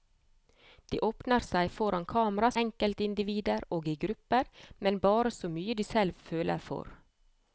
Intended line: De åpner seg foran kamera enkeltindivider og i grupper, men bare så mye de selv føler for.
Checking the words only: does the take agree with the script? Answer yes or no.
yes